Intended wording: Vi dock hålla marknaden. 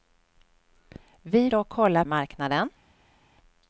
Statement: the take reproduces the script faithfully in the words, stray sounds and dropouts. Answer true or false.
true